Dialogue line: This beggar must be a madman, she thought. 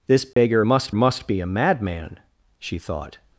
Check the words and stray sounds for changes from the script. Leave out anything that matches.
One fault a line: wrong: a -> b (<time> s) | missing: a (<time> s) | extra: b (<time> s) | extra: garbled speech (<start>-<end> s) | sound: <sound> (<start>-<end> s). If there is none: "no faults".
sound: dropout (0.3-0.4 s)
extra: must (0.9 s)